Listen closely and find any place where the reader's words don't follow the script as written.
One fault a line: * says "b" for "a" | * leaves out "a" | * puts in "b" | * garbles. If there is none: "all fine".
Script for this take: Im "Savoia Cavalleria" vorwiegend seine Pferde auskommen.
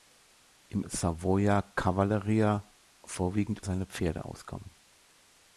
all fine